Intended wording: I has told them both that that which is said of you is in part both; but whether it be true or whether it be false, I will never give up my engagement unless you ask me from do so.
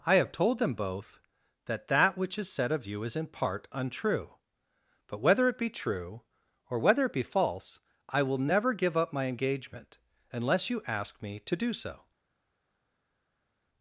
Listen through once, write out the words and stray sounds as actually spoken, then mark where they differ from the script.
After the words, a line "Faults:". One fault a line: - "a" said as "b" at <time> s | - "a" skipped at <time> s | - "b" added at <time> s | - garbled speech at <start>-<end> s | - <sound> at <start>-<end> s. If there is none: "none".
I have told them both that that which is said of you is in part untrue; but whether it be true or whether it be false, I will never give up my engagement unless you ask me to do so.
Faults:
- "has" said as "have" at 0.1 s
- "both" said as "untrue" at 3.7 s
- "from" said as "to" at 11.4 s